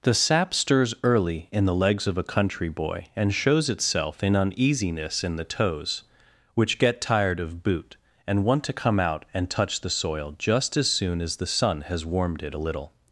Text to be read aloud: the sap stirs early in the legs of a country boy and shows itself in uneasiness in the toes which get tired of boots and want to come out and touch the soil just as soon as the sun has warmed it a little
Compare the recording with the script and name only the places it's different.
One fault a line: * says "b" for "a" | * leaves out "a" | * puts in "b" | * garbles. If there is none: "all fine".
* says "boot" for "boots"